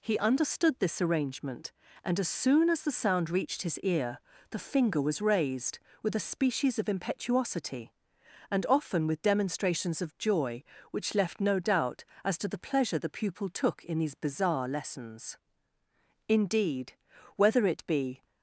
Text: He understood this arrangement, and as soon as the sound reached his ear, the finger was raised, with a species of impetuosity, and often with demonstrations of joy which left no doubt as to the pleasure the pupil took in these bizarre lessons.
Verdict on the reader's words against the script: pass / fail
fail